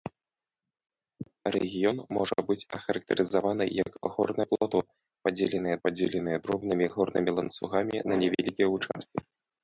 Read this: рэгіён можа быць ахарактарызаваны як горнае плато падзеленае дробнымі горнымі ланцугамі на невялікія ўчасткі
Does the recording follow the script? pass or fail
fail